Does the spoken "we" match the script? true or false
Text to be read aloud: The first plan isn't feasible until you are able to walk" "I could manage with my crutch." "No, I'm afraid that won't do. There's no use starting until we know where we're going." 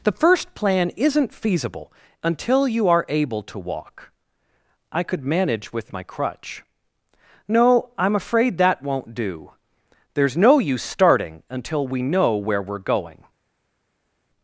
true